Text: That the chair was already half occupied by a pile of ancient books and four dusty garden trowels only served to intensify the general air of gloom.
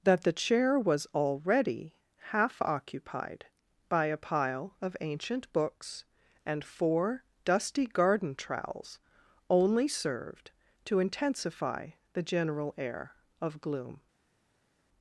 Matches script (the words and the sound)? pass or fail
pass